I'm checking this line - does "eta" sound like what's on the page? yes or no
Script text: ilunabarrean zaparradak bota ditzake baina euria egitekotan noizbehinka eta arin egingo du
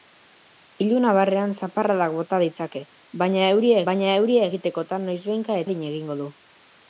no